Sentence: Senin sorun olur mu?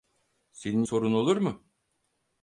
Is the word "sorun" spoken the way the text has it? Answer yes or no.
yes